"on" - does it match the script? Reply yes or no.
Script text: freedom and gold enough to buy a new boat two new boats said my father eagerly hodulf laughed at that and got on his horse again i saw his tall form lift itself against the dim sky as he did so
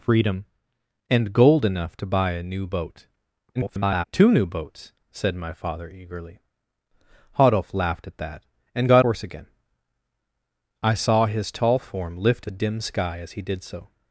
no